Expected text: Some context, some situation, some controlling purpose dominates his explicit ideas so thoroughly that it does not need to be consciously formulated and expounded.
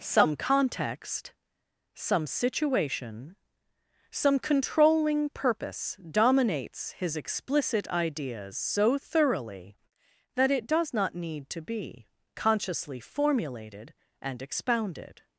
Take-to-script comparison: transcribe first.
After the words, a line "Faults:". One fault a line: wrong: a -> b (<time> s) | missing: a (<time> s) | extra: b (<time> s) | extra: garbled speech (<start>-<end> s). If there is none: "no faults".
Some context, some situation, some controlling purpose dominates his explicit ideas so thoroughly that it does not need to be consciously formulated and expounded.
Faults:
no faults